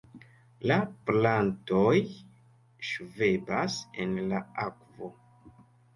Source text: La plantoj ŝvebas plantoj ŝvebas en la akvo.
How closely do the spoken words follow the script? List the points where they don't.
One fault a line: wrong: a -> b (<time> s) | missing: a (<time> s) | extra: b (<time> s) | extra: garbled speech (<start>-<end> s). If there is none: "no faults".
missing: plantoj ŝvebas (3.8 s)